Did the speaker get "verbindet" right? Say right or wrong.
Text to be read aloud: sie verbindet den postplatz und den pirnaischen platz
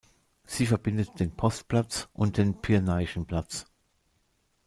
right